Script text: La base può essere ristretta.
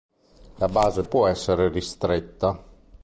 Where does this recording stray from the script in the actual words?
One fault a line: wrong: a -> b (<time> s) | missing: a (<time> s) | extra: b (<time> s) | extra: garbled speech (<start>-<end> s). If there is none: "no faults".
no faults